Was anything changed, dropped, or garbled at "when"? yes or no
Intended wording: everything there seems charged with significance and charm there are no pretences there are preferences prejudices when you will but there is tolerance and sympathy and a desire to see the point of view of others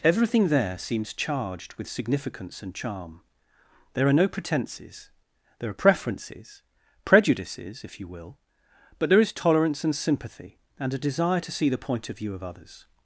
yes